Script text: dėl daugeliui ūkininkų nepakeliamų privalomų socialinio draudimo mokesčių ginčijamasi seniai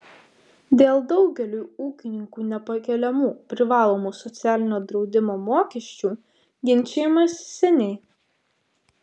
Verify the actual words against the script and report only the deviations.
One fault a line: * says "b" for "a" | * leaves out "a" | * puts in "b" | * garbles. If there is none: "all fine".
all fine